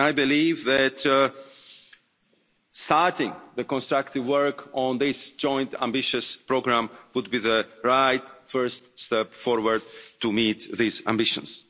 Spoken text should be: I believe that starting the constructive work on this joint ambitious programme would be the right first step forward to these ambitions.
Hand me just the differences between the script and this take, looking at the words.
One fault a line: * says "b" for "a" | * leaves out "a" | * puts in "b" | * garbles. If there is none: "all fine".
* puts in "meet"